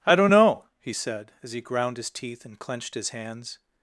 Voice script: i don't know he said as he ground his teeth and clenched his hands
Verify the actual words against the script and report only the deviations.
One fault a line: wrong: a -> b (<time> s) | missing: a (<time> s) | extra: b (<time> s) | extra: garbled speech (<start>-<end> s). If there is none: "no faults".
no faults